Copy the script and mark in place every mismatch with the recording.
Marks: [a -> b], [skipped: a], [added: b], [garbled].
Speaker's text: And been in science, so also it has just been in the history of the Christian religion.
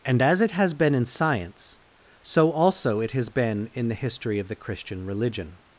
And [added: as it has] been in science, so also it has [skipped: just] been in the history of the Christian religion.